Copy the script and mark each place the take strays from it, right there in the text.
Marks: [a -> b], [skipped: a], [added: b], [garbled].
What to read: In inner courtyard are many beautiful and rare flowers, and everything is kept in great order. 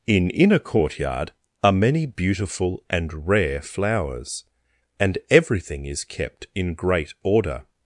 In inner courtyard are many beautiful and rare flowers, and everything is kept in great order.